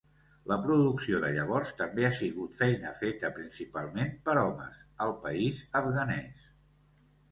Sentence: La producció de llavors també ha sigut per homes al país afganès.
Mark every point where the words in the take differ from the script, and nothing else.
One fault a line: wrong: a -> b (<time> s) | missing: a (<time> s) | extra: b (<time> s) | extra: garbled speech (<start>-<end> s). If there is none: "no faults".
extra: feina feta principalment (2.6 s)